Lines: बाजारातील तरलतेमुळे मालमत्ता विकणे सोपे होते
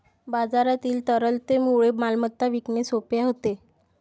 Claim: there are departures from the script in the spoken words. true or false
false